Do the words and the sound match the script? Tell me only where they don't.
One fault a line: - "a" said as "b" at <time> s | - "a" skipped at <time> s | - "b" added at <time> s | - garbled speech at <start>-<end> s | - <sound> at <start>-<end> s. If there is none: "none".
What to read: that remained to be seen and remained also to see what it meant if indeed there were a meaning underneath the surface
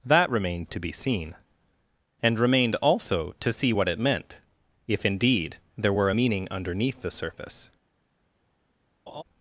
- laugh at 9.1-9.2 s